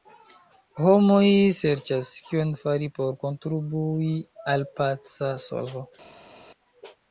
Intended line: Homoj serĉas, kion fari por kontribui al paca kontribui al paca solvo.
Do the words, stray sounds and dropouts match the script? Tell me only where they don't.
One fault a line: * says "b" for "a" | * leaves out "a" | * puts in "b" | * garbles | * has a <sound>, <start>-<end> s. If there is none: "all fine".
* leaves out "kontribui al paca"